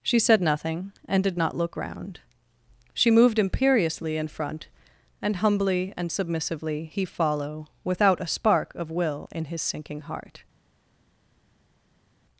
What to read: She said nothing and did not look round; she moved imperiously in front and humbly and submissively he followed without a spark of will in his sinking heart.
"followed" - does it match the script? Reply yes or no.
no